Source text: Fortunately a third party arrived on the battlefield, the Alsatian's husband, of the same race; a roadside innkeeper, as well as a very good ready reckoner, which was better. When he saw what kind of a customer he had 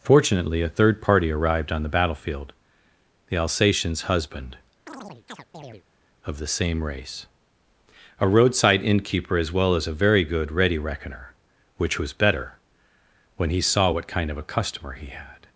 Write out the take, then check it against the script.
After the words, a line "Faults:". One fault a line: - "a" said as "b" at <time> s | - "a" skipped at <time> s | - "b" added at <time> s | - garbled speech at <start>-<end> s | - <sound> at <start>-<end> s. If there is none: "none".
Fortunately a third party arrived on the battlefield, the Alsatian's husband, of the same race; a roadside innkeeper, as well as a very good ready reckoner, which was better. When he saw what kind of a customer he had
Faults:
- chirp at 4.9-5.8 s